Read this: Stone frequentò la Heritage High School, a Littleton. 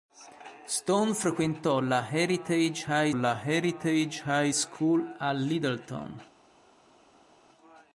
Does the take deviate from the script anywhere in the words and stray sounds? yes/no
yes